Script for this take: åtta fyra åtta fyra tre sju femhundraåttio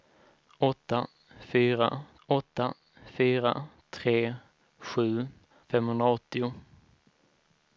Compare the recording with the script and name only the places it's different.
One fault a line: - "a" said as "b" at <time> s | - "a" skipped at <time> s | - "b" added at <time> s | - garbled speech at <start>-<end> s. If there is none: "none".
none